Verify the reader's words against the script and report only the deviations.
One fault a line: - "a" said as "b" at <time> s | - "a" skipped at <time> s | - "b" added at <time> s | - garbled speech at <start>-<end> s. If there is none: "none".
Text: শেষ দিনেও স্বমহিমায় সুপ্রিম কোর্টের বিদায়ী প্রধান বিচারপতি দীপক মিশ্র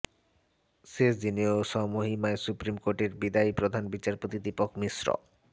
none